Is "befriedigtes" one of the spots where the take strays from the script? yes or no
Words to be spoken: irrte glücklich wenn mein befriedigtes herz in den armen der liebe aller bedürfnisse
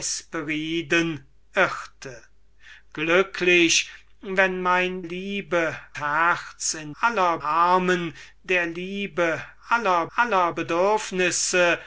yes